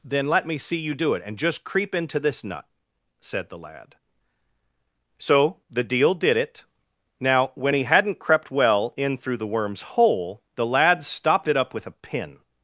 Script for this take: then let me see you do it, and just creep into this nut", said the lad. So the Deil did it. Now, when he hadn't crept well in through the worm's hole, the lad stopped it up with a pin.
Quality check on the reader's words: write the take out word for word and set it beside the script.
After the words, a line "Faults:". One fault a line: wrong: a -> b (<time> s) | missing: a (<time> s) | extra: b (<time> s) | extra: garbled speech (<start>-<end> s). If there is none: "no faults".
then let me see you do it, and just creep into this nut", said the lad. So the Deil did it. Now, when he hadn't crept well in through the worm's hole, the lad stopped it up with a pin.
Faults:
no faults